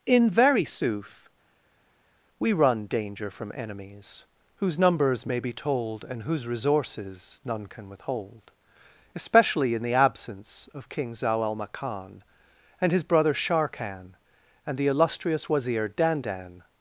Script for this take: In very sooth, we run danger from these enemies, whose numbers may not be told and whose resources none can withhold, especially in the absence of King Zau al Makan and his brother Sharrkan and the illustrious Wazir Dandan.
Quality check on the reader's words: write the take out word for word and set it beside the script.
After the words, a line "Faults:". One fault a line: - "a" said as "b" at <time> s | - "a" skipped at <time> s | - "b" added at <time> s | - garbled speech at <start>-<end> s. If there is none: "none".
In very sooth, we run danger from enemies, whose numbers may be told and whose resources none can withhold, especially in the absence of King Zau al Makan and his brother Sharrkan and the illustrious Wazir Dandan.
Faults:
- "these" skipped at 3.5 s
- "not" skipped at 5.4 s